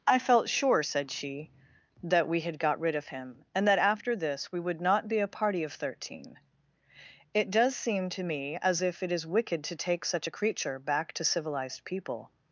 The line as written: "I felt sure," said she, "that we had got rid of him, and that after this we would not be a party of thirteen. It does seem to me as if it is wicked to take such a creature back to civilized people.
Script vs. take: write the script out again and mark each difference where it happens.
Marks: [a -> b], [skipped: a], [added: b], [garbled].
"I felt sure," said she, "that we had got rid of him, and that after this we would not be a party of thirteen. It does seem to me as if it is wicked to take such a creature back to civilized people.